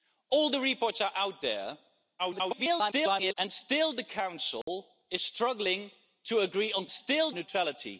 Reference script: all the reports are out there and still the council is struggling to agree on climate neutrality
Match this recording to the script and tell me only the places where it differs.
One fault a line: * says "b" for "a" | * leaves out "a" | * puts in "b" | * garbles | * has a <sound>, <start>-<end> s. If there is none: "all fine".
* garbles
* has a dropout, 4.6-4.7 s
* says "still" for "climate"